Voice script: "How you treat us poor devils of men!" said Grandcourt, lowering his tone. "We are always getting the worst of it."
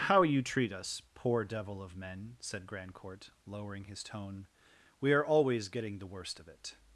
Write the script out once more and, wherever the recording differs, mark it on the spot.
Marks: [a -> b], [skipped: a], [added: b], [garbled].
"How you treat us poor [devils -> devil] of men!" said Grandcourt, lowering his tone. "We are always getting the worst of it."